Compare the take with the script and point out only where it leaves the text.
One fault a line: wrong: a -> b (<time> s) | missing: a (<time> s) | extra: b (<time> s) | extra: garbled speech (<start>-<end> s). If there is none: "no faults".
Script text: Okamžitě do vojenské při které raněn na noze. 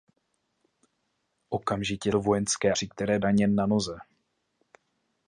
no faults